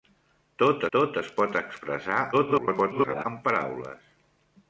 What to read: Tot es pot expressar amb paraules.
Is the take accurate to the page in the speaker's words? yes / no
no